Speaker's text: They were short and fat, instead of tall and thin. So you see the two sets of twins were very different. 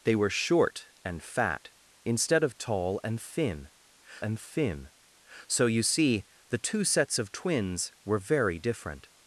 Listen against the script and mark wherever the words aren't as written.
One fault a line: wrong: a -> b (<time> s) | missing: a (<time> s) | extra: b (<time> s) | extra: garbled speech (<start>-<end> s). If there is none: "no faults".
extra: and thin (4.2 s)